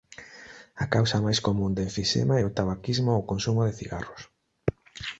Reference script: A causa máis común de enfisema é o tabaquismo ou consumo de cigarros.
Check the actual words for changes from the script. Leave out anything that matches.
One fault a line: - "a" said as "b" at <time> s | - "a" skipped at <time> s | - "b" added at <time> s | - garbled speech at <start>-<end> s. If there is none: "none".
none